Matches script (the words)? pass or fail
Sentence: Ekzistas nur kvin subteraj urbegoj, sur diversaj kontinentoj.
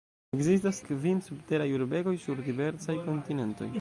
fail